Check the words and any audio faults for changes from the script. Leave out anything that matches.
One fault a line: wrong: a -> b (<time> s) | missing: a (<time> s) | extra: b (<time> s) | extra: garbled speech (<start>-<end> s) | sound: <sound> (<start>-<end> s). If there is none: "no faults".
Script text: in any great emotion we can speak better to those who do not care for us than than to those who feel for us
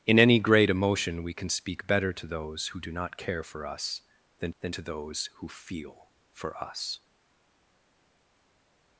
no faults